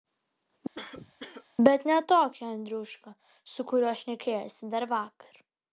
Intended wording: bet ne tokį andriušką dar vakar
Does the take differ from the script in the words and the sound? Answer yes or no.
yes